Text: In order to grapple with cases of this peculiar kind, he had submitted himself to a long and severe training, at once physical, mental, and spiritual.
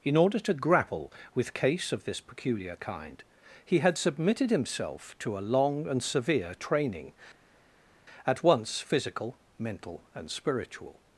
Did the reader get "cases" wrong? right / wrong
wrong